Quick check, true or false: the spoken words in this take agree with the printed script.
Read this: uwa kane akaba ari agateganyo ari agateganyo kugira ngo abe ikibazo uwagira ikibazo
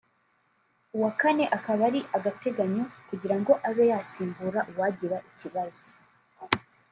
false